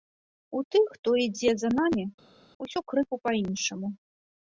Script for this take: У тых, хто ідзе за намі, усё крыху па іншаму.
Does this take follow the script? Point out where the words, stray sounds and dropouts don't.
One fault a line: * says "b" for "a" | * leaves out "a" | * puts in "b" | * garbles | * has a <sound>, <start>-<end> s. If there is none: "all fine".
all fine